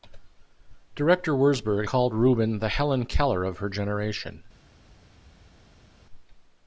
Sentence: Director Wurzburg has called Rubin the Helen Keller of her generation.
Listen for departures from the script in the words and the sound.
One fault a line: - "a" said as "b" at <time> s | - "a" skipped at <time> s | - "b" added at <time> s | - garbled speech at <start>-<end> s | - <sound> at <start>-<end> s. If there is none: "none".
- "has" skipped at 1.9 s